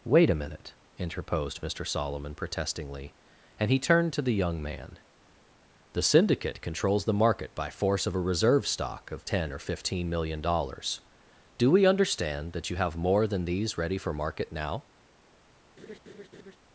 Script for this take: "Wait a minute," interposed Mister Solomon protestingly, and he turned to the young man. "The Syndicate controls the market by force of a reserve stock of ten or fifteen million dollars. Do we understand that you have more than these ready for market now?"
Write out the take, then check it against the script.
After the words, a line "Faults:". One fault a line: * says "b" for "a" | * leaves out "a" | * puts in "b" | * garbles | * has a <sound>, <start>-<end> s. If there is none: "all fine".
"Wait a minute," interposed Mister Solomon protestingly, and he turned to the young man. "The Syndicate controls the market by force of a reserve stock of ten or fifteen million dollars. Do we understand that you have more than these ready for market now?"
Faults:
* has a laugh, 15.8-16.6 s